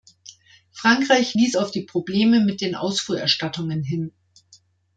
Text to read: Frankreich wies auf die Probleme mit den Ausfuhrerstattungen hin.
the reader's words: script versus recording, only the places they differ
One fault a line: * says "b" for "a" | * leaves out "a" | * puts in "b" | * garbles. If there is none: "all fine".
all fine